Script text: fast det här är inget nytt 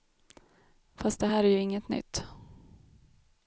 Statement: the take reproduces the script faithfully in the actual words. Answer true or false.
false